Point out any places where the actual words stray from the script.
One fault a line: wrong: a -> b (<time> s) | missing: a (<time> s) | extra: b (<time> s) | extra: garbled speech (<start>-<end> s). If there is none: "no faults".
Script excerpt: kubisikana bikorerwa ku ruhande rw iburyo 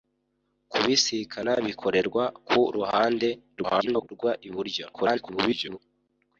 extra: garbled speech (3.6-4.1 s)
extra: garbled speech (4.9-5.8 s)